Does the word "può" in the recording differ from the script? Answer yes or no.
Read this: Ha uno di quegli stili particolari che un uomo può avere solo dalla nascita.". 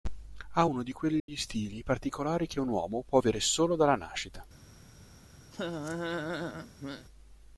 no